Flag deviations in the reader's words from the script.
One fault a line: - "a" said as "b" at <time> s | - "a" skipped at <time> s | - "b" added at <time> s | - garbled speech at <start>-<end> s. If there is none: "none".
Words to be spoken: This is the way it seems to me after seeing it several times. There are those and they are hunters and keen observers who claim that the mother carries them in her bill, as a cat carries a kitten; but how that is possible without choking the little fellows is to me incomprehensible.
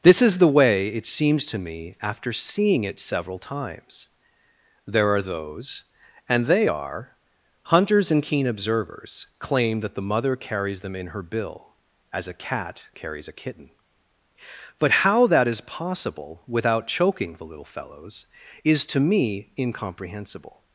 - "who" skipped at 9.3 s